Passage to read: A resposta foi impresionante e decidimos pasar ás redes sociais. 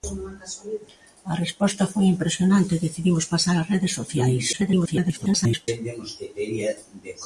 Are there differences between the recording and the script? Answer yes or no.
yes